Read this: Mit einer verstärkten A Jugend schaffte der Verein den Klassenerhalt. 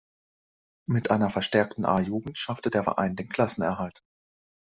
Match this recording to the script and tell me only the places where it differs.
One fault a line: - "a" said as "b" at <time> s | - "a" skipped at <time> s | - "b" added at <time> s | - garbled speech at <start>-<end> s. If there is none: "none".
none